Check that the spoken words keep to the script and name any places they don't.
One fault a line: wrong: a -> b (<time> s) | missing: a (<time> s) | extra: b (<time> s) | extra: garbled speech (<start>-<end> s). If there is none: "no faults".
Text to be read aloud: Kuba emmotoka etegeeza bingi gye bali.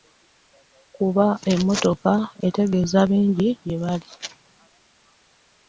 no faults